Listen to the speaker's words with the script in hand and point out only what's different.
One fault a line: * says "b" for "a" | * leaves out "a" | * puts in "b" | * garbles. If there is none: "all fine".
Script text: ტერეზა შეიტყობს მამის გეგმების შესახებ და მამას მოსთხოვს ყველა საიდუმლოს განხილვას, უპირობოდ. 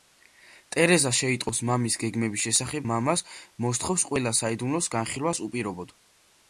* leaves out "და"